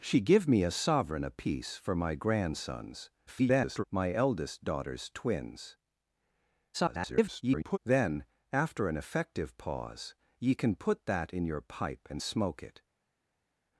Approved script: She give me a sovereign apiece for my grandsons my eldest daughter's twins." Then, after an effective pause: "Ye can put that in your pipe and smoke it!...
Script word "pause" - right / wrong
right